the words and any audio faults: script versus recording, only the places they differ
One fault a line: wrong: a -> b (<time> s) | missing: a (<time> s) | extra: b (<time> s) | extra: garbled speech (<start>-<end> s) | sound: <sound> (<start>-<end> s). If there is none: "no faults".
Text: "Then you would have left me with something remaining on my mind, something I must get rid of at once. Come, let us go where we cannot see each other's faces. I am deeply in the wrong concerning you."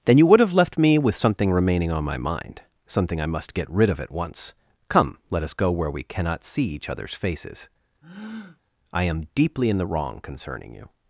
sound: breath (8.0-8.6 s)